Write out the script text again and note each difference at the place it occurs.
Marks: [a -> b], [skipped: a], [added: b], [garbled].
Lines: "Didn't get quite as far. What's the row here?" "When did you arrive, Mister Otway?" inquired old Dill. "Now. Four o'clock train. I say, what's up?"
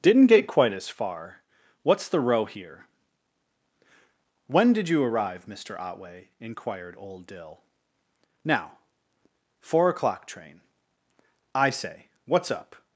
"Didn't get quite as far. What's the row here?" "When did you arrive, Mister Otway?" inquired old Dill. "Now. Four o'clock train. I say, what's up?"